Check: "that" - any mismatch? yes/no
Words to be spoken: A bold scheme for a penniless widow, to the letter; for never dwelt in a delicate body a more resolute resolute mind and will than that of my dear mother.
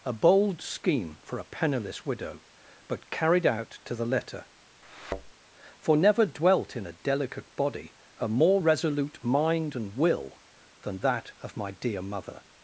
no